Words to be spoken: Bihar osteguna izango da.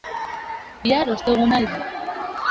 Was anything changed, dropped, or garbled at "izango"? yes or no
yes